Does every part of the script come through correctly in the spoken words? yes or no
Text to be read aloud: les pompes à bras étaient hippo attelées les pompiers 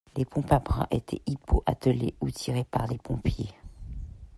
no